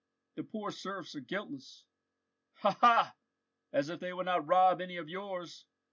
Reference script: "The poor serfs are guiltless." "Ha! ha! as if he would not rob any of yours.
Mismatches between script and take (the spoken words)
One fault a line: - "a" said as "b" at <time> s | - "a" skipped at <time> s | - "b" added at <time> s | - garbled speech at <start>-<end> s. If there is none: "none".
- "he" said as "they" at 4.0 s